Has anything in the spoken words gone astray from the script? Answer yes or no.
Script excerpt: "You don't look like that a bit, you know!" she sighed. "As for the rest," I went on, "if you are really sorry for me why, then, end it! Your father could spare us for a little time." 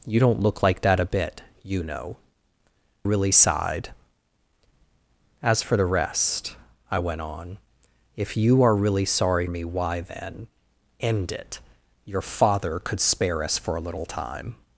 yes